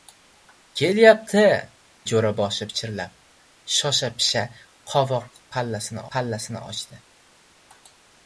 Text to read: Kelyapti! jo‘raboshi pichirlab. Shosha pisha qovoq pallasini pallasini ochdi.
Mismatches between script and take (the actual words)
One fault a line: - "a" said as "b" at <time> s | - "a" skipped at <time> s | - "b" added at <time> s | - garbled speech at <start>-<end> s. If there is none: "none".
none